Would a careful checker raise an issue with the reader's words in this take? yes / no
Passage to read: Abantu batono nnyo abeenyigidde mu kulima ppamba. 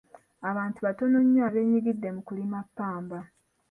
no